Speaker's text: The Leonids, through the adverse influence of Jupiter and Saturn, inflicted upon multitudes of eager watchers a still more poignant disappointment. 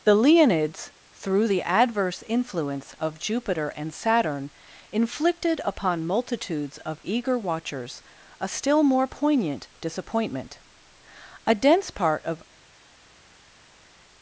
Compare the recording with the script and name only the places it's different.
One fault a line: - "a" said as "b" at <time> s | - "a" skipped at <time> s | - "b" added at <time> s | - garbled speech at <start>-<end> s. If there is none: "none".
- "A dense part of" added at 11.5 s